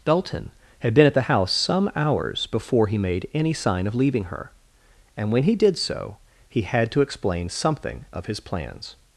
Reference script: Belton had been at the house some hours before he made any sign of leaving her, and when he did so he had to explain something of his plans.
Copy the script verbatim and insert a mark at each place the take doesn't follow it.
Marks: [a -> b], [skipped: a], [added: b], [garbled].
[Belton -> Dalton] had been at the house some hours before he made any sign of leaving her, and when he did so he had to explain something of his plans.